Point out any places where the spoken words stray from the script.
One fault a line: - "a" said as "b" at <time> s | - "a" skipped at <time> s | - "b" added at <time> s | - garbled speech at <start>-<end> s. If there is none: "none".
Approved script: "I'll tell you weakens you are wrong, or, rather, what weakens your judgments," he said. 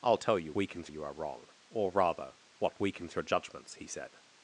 none